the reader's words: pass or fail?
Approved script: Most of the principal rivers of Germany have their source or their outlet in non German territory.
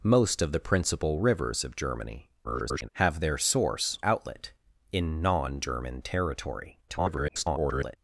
fail